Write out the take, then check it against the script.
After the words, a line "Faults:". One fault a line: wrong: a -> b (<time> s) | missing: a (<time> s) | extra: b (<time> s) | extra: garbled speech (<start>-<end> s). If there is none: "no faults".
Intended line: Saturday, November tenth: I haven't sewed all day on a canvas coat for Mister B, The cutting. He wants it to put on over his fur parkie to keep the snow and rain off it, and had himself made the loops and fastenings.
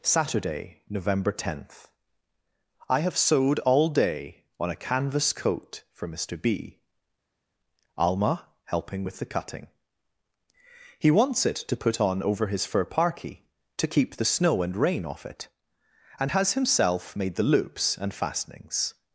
Saturday, November tenth: I have sewed all day on a canvas coat for Mister B, Alma helping with the cutting. He wants it to put on over his fur parkie to keep the snow and rain off it, and has himself made the loops and fastenings.
Faults:
wrong: haven't -> have (3.0 s)
extra: Alma helping with (8.0 s)
wrong: had -> has (16.3 s)